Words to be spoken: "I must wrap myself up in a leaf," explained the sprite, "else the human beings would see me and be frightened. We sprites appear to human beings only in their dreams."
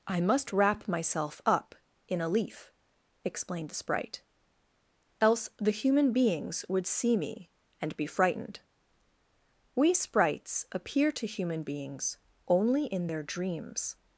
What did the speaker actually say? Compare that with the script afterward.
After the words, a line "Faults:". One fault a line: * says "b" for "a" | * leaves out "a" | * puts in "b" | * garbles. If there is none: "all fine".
"I must wrap myself up in a leaf," explained the sprite, "else the human beings would see me and be frightened. We sprites appear to human beings only in their dreams."
Faults:
all fine